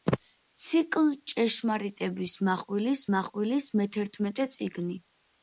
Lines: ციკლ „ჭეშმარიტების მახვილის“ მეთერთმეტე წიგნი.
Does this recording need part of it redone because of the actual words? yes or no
yes